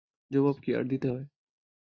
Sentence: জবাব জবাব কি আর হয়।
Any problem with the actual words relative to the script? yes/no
yes